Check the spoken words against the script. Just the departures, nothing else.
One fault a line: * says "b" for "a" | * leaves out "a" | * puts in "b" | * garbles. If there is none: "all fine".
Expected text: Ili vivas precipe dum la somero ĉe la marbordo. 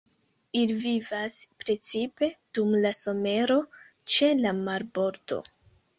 all fine